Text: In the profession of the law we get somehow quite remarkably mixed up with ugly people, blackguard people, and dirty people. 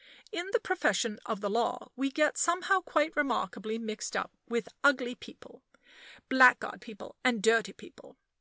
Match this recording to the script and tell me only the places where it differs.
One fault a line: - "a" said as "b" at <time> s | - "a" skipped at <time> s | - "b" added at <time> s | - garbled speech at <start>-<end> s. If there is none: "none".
none